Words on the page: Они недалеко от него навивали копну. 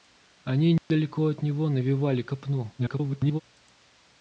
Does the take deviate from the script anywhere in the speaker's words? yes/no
yes